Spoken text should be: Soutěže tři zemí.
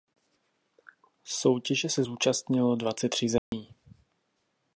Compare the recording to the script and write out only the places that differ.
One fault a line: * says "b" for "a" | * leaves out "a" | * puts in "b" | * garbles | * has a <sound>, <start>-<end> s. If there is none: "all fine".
* puts in "se zúčastnilo dvacet"
* has a dropout, 3.4-3.5 s